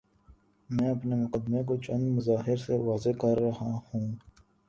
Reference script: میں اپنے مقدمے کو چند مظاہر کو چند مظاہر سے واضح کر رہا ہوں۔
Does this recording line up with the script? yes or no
no